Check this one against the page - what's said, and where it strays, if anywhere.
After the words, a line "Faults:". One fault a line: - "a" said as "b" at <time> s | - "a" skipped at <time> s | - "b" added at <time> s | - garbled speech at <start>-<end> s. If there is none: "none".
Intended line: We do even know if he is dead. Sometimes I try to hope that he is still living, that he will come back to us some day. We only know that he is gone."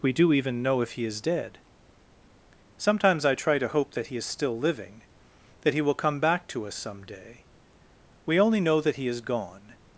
We do even know if he is dead. Sometimes I try to hope that he is still living, that he will come back to us some day. We only know that he is gone."
Faults:
none